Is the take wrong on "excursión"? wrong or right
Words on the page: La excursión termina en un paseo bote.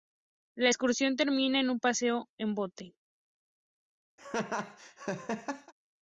right